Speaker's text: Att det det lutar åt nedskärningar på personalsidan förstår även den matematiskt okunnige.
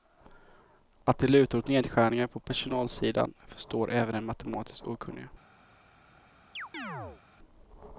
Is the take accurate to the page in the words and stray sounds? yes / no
no